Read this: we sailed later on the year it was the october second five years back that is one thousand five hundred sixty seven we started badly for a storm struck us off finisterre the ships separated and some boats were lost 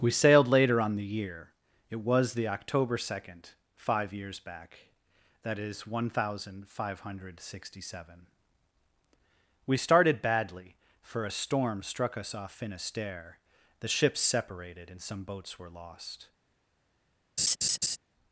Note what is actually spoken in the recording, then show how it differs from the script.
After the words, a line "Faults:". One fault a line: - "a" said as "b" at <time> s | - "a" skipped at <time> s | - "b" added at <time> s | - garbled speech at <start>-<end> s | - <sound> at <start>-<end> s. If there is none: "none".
we sailed later on the year it was the october second five years back that is one thousand five hundred sixty seven we started badly for a storm struck us off finisterre the ships separated and some boats were lost
Faults:
- laugh at 17.4-18.0 s